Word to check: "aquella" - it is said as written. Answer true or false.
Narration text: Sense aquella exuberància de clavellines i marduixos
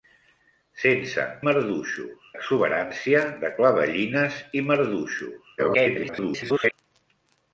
false